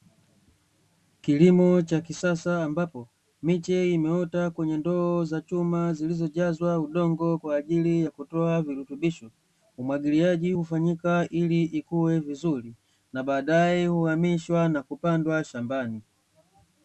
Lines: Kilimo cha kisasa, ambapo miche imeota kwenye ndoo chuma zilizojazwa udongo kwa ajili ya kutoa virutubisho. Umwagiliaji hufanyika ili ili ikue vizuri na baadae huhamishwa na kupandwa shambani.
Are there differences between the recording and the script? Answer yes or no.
yes